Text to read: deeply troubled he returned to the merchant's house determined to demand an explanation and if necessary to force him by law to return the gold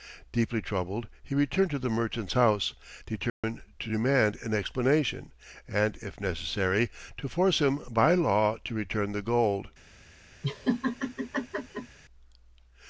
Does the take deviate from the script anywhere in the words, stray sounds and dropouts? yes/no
yes